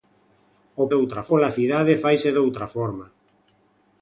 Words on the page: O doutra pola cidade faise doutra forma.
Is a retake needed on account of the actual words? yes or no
no